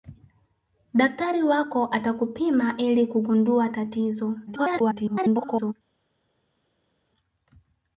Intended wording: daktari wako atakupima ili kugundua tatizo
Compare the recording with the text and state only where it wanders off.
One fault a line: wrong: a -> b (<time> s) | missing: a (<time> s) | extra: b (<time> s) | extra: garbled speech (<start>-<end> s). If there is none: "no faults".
extra: garbled speech (4.5-5.7 s)